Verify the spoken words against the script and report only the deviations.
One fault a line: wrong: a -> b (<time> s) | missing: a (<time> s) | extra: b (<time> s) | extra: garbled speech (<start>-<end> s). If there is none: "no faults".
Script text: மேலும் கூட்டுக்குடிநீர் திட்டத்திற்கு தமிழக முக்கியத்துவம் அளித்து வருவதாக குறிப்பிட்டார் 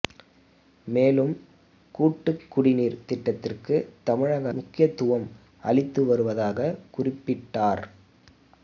no faults